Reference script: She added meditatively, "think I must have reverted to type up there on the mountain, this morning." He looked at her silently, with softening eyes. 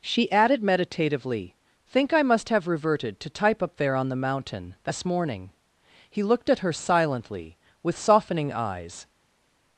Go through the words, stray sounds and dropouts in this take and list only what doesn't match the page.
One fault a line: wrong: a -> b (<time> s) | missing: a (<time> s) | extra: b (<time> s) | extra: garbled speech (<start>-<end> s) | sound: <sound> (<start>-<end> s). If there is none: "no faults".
no faults